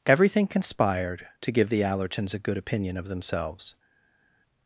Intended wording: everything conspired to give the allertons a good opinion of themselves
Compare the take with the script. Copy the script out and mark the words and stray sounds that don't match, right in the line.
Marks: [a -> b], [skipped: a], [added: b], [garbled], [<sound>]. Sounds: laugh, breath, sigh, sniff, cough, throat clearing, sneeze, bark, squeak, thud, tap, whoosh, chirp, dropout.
everything conspired to give the allertons a good opinion of themselves